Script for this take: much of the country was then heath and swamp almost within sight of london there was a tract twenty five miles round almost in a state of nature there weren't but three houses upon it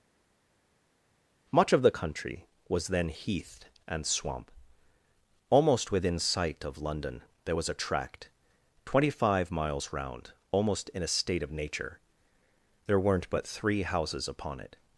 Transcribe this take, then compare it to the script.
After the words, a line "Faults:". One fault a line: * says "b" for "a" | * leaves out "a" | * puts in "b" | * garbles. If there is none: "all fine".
much of the country was then heath and swamp almost within sight of london there was a tract twenty five miles round almost in a state of nature there weren't but three houses upon it
Faults:
all fine